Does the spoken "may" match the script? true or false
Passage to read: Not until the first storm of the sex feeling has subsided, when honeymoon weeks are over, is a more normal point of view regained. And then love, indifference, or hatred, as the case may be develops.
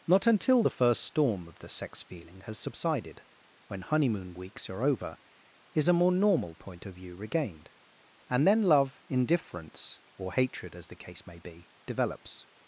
true